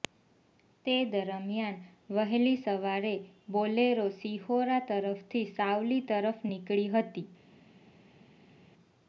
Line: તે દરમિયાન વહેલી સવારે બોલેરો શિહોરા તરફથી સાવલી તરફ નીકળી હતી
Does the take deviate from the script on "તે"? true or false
false